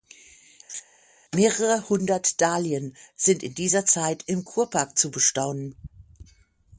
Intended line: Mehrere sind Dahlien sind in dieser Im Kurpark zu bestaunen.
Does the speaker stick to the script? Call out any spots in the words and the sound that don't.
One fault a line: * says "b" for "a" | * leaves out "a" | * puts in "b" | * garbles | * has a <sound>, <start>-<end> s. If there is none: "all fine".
* has a laugh, 0.7-0.8 s
* says "hundert" for "sind"
* puts in "Zeit"